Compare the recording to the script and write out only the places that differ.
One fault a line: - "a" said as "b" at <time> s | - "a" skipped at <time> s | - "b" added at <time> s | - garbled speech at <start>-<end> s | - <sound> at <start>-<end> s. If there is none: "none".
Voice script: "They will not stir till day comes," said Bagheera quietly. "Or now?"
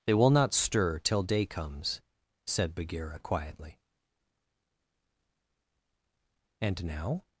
- "Or" said as "And" at 6.6 s